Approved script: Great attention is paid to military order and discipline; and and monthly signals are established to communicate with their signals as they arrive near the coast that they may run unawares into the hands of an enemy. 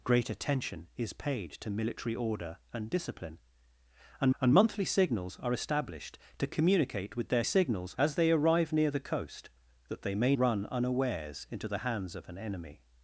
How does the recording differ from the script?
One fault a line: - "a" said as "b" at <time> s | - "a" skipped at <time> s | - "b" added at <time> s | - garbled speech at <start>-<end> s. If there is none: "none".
none